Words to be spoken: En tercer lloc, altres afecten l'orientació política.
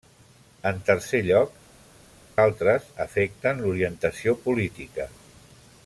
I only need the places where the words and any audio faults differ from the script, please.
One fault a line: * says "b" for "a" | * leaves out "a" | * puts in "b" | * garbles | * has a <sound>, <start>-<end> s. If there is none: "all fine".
all fine